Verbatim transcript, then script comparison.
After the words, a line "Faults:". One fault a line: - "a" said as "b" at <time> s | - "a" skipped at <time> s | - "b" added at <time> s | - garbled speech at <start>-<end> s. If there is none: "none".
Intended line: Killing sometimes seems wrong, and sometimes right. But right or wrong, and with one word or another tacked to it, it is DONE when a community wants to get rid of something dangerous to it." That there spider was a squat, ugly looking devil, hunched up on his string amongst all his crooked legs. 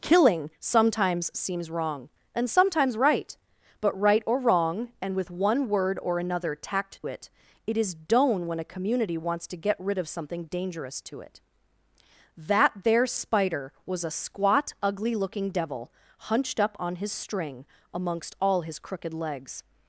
Killing sometimes seems wrong, and sometimes right. But right or wrong, and with one word or another tacked it, it is DONE when a community wants to get rid of something dangerous to it." That there spider was a squat, ugly looking devil, hunched up on his string amongst all his crooked legs.
Faults:
- "to" skipped at 7.0 s